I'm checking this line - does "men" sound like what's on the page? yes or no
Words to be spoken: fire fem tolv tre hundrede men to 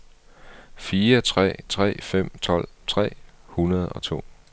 no